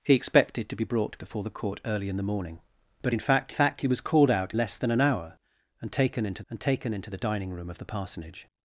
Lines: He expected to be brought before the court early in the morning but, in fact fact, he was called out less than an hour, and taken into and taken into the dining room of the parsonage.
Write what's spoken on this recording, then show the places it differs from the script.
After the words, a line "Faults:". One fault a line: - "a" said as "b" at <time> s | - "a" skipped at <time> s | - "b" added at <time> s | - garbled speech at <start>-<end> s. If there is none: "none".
He expected to be brought before the court early in the morning but, in fact fact, he was called out less than an hour, and taken into and taken into the dining room of the parsonage.
Faults:
none